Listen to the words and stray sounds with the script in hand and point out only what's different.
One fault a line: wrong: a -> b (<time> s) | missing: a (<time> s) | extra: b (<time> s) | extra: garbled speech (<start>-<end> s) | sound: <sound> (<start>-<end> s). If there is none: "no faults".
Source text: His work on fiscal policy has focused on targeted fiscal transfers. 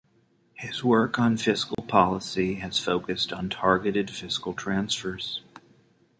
sound: dropout (1.7-1.8 s)